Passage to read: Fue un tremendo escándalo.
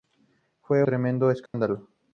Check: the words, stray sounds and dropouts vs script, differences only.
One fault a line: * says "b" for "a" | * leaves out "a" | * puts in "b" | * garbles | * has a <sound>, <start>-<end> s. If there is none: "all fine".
* leaves out "un"
* has a dropout, 1.5-1.5 s